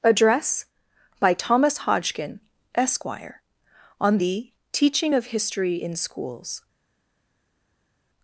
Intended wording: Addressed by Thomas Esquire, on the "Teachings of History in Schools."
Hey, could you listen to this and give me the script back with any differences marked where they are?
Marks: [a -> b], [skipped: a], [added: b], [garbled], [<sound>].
[Addressed -> Address] by Thomas [added: Hodgkin] Esquire, on the ["Teachings -> Teaching] of History in Schools."